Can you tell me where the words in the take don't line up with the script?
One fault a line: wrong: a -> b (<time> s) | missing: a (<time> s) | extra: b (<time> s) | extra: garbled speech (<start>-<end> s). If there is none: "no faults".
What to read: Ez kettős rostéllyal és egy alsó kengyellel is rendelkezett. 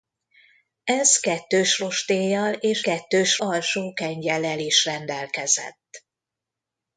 wrong: egy -> kettős (2.8 s)